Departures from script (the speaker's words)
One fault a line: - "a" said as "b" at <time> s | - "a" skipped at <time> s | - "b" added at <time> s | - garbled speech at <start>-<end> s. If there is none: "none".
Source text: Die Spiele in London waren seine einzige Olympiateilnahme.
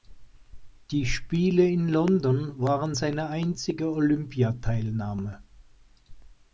none